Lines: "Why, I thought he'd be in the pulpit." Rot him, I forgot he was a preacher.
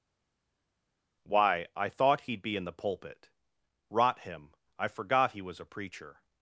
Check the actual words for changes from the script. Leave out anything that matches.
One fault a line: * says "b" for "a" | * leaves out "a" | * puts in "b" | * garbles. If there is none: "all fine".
all fine